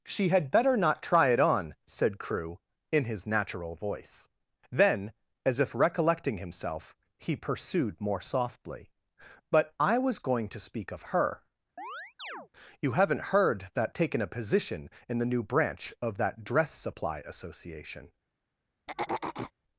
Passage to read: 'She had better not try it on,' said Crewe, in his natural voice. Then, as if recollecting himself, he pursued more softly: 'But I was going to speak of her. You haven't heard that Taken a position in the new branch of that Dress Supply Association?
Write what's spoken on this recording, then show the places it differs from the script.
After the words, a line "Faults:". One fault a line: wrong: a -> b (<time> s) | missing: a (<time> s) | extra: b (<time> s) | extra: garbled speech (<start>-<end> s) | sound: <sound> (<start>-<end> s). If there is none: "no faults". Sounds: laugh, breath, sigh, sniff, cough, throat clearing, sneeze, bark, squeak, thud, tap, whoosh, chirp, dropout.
'She had better not try it on,' said Crewe, in his natural voice. Then, as if recollecting himself, he pursued more softly: 'But I was going to speak of her. You haven't heard that Taken a position in the new branch of that Dress Supply Association?
Faults:
sound: chirp (11.8-12.5 s)
sound: throat clearing (18.9-19.5 s)